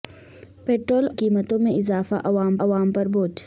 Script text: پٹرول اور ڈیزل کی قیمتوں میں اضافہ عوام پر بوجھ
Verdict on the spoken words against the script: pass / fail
fail